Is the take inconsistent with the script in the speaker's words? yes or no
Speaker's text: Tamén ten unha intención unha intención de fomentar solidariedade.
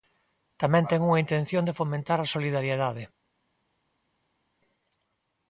yes